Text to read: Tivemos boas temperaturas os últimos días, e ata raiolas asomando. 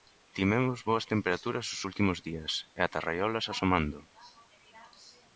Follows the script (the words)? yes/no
yes